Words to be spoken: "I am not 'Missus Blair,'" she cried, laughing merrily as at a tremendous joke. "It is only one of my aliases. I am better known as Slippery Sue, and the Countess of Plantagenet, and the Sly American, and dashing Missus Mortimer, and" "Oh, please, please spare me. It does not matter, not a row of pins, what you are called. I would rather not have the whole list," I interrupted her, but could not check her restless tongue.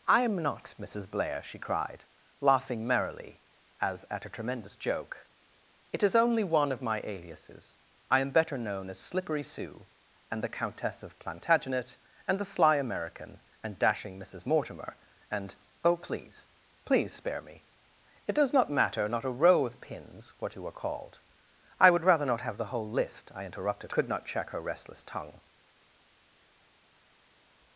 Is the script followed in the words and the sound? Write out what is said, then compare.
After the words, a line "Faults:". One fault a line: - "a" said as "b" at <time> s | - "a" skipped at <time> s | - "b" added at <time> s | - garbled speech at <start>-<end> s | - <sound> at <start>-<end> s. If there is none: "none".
"I am not 'Missus Blair,'" she cried, laughing merrily as at a tremendous joke. "It is only one of my aliases. I am better known as Slippery Sue, and the Countess of Plantagenet, and the Sly American, and dashing Missus Mortimer, and" "Oh, please, please spare me. It does not matter, not a row of pins, what you are called. I would rather not have the whole list," I interrupted could not check her restless tongue.
Faults:
- "her but" skipped at 23.9 s